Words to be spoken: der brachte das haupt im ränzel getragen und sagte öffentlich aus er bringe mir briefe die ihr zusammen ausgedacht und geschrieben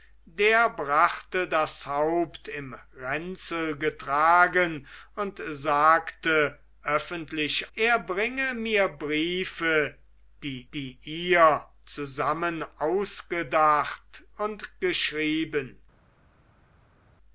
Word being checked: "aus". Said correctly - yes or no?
no